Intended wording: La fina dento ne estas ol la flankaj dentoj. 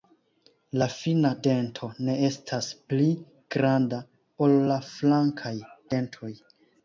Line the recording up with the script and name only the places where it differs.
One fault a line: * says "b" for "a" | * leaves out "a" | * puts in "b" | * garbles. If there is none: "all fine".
* puts in "pli granda"